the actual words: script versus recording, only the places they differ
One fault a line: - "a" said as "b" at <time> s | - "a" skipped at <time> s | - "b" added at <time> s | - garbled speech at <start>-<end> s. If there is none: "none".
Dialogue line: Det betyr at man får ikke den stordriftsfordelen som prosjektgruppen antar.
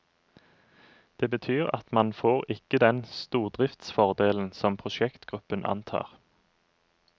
none